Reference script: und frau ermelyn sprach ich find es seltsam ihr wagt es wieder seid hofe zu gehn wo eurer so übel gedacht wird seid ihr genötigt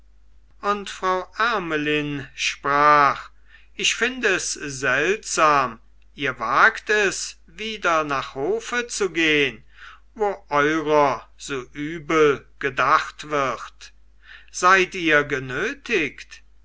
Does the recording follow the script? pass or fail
fail